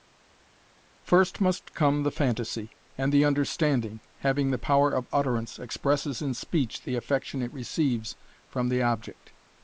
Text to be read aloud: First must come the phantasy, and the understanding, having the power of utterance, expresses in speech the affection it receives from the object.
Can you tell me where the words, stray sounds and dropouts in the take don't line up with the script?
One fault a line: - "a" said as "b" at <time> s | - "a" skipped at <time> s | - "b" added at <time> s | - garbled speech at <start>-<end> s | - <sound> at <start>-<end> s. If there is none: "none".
none